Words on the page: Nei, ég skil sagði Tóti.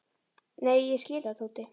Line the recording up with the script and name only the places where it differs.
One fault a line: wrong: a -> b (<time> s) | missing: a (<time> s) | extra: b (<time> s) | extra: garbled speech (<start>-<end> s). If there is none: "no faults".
no faults